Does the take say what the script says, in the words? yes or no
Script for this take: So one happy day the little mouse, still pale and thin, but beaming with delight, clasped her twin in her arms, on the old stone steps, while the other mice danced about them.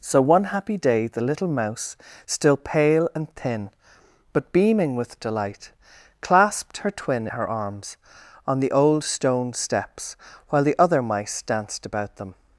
no